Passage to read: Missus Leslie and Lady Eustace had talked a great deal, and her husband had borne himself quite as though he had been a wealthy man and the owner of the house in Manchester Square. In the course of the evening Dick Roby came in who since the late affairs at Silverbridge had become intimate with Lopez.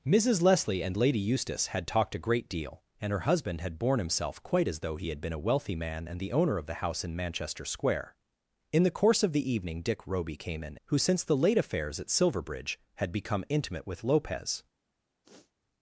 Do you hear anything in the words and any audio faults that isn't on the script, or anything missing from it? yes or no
yes